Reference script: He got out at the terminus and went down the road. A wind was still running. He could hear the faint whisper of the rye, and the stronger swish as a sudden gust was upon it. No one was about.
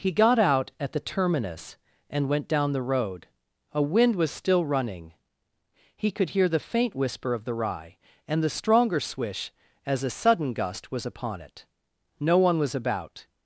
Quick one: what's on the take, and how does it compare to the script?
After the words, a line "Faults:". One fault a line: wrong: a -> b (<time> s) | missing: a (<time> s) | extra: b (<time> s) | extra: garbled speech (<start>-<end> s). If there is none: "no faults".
He got out at the terminus and went down the road. A wind was still running. He could hear the faint whisper of the rye, and the stronger swish as a sudden gust was upon it. No one was about.
Faults:
no faults